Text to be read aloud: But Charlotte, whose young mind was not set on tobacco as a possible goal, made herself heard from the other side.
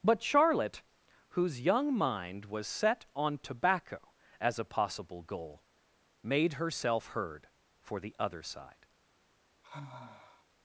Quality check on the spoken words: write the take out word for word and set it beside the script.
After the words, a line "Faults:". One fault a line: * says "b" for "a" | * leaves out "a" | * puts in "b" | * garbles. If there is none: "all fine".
But Charlotte, whose young mind was set on tobacco as a possible goal, made herself heard for the other side.
Faults:
* leaves out "not"
* says "for" for "from"